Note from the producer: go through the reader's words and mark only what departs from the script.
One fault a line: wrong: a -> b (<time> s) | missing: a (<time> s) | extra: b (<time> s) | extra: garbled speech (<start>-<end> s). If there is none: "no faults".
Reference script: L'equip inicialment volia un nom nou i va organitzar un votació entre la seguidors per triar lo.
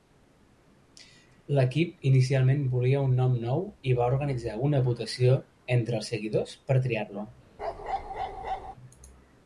wrong: un -> una (4.7 s)
wrong: la -> els (6.0 s)